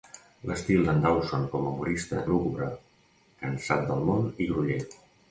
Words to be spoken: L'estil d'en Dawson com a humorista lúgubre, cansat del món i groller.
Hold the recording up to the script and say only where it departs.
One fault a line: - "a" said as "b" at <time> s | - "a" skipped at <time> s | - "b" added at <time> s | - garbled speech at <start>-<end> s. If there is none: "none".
none